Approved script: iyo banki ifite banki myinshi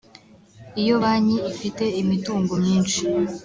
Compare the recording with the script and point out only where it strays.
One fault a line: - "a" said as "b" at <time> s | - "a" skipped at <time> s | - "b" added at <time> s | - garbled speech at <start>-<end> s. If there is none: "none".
- "banki" said as "imitungo" at 2.0 s